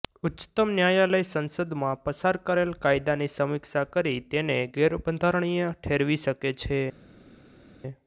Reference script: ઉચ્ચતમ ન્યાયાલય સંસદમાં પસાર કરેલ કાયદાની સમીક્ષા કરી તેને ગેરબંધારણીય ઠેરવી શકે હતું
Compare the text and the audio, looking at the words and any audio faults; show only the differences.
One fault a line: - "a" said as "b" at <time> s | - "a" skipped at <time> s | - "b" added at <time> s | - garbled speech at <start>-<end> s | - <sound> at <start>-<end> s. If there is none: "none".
- "હતું" said as "છે" at 6.6 s